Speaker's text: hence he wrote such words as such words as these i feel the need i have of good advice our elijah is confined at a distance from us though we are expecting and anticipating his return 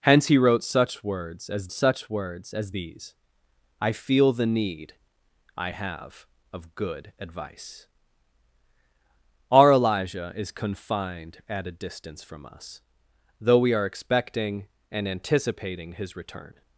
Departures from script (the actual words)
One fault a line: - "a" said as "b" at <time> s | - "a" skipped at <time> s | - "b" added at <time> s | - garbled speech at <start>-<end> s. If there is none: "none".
none